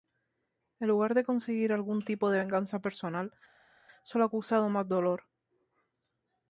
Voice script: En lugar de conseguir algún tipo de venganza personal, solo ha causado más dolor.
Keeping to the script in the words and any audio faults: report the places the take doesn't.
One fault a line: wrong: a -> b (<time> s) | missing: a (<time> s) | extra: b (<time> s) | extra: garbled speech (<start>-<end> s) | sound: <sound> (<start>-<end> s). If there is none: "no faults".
no faults